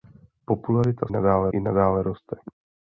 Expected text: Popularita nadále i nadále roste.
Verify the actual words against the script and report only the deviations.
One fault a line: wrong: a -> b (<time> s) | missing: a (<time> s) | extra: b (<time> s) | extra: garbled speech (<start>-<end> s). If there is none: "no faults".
no faults